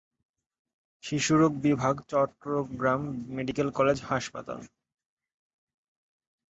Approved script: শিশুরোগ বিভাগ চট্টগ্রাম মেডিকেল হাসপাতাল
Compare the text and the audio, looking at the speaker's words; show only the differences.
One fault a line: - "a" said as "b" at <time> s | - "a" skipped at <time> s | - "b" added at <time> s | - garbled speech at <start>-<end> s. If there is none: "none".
- "কলেজ" added at 3.7 s